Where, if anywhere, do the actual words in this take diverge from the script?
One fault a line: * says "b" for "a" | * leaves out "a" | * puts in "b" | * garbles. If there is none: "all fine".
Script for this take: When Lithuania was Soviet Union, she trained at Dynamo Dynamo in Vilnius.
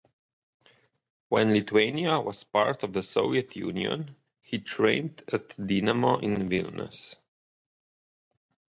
* puts in "part of the"
* says "he" for "she"
* leaves out "Dynamo"